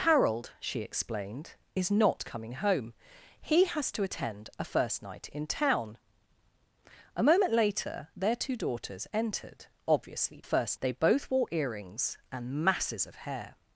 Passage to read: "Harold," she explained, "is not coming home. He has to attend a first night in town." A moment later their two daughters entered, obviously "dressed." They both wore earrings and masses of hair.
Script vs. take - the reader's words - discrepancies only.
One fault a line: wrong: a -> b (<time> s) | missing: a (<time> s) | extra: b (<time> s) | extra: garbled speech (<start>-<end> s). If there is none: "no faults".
wrong: dressed -> first (10.4 s)